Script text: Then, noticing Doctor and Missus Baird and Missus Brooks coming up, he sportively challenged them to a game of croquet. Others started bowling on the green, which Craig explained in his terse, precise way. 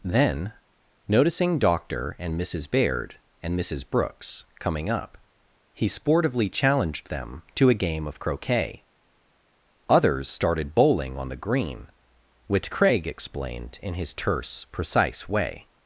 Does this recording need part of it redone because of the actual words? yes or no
no